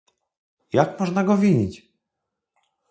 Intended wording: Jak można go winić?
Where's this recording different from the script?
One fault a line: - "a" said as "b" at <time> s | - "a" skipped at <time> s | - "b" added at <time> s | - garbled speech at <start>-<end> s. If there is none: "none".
none